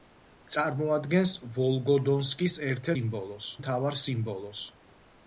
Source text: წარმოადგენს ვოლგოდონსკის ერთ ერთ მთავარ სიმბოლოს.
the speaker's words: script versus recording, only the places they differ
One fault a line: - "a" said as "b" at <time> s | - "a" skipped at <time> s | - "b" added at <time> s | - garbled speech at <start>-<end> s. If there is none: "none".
- "ერთ" said as "სიმბოლოს" at 2.9 s